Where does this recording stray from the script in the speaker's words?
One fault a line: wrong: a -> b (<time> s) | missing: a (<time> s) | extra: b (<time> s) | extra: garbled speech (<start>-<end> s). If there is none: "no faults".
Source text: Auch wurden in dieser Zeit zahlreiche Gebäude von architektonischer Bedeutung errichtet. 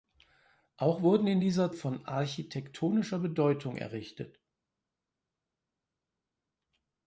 missing: Zeit zahlreiche Gebäude (1.7 s)